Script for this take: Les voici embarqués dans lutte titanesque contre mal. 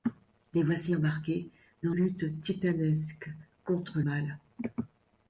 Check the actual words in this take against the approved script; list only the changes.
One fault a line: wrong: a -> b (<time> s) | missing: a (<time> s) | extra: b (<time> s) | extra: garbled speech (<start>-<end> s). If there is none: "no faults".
no faults